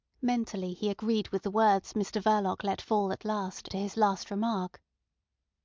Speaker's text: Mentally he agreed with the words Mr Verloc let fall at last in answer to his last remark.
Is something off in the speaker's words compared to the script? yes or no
yes